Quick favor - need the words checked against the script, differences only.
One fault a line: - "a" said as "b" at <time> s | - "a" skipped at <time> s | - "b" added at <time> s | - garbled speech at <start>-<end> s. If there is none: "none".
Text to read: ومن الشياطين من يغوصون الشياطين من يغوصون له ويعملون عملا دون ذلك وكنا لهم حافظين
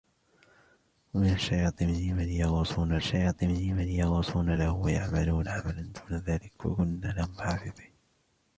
none